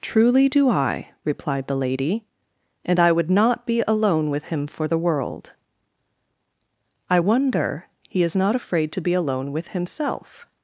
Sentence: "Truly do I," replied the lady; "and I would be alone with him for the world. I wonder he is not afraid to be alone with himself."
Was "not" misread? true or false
false